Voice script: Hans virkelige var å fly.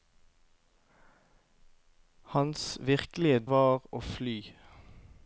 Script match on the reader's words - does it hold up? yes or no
yes